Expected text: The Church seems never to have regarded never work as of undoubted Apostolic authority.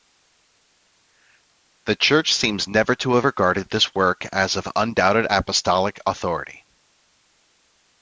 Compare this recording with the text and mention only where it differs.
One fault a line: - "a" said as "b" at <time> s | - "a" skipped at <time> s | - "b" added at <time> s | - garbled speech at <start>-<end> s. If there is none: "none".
- "never" said as "this" at 3.7 s